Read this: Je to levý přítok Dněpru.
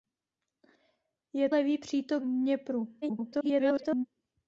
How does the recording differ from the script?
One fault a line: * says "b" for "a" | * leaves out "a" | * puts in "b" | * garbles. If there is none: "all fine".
* leaves out "to"
* garbles